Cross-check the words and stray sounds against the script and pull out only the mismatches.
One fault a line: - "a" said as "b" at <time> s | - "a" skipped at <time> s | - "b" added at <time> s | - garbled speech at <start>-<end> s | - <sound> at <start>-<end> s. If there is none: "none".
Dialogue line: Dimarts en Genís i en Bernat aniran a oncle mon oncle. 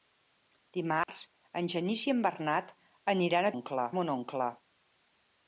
- dropout at 1.0-1.1 s